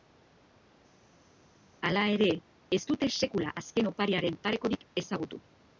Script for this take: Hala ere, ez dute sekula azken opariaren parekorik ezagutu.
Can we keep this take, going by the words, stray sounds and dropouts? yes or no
yes